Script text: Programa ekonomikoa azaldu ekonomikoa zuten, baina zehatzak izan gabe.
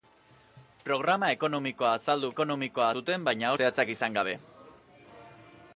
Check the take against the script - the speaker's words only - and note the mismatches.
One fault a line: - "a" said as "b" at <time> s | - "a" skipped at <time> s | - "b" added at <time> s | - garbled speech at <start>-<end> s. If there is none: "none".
none